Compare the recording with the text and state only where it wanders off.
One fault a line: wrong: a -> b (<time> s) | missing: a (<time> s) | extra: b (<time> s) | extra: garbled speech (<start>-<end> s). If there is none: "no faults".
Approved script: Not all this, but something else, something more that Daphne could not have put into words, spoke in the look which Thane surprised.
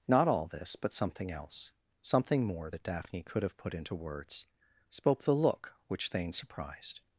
missing: not (3.4 s)
missing: in (5.2 s)